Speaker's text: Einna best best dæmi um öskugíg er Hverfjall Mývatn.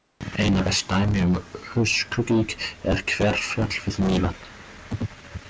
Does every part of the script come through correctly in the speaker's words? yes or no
no